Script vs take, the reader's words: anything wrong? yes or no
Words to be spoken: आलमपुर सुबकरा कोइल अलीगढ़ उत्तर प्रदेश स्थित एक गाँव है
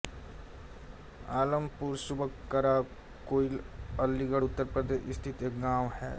no